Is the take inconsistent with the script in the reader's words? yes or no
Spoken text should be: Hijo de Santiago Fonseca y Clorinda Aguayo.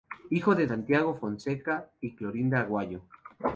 no